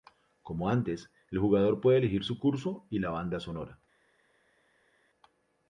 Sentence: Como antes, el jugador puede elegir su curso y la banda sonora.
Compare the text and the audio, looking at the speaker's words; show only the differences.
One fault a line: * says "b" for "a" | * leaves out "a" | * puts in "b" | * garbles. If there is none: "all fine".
all fine